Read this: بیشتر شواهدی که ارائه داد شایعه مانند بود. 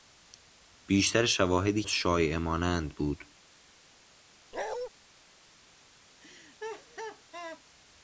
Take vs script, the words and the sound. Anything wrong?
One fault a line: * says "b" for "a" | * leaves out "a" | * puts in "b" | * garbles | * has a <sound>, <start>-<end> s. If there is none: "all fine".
* leaves out "که ارائه داد"
* has a bark, 4.5-4.9 s
* has a laugh, 6.2-7.6 s